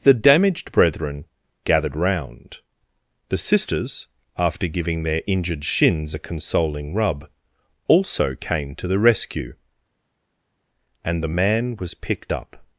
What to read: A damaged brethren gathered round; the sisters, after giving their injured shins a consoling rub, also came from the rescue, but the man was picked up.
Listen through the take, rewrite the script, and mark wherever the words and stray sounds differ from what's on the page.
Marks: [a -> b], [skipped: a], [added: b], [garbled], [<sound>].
[A -> The] damaged brethren gathered round; the sisters, after giving their injured shins a consoling rub, also came [from -> to] the rescue, [but -> and] the man was picked up.